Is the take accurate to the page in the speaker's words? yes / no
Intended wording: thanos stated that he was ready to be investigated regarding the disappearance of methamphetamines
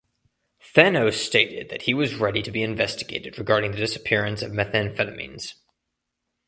yes